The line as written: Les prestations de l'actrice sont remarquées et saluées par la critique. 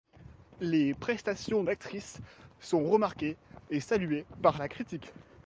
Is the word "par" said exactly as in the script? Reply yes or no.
yes